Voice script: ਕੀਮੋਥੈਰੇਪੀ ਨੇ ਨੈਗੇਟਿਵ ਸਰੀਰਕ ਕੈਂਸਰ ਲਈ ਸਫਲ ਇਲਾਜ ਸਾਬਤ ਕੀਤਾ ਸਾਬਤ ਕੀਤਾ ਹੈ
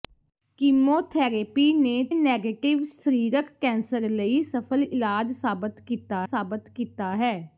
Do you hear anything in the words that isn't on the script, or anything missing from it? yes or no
no